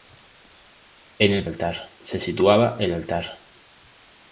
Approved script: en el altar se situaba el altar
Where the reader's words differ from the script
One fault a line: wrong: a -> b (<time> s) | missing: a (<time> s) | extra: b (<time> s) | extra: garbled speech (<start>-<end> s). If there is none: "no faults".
no faults